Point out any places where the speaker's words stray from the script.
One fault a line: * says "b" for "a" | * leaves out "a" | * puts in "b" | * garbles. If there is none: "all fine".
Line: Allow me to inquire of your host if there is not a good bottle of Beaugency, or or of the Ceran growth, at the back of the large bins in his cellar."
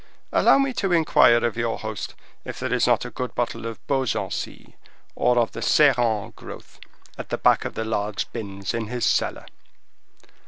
* leaves out "or"